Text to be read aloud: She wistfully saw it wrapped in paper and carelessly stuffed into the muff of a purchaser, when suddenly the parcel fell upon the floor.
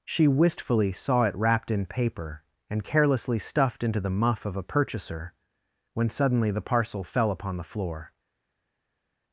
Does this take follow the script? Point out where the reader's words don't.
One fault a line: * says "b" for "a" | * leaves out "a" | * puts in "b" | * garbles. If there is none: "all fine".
all fine